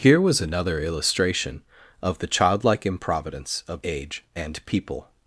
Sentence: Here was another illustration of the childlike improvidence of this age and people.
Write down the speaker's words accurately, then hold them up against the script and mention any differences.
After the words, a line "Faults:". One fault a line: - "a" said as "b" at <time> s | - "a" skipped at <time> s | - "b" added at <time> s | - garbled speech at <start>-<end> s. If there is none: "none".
Here was another illustration of the childlike improvidence of age and people.
Faults:
- "this" skipped at 3.9 s